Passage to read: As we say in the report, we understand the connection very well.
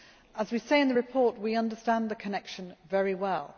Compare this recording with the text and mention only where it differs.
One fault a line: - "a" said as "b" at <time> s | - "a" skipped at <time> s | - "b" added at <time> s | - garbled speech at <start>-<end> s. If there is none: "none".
none